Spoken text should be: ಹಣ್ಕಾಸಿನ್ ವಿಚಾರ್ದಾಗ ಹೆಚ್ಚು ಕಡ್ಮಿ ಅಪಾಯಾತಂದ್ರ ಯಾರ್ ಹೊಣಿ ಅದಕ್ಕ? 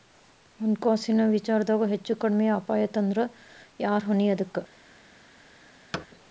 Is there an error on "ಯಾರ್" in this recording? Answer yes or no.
no